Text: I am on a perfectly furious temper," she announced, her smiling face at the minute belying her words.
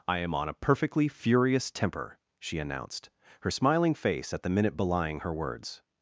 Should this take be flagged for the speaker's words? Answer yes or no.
no